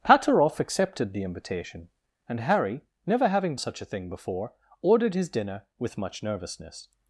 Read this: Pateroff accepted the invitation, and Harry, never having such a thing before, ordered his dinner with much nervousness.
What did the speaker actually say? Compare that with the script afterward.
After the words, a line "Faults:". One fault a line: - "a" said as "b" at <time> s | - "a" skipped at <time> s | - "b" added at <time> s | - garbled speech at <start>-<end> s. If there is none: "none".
Pateroff accepted the invitation, and Harry, never having such a thing before, ordered his dinner with much nervousness.
Faults:
none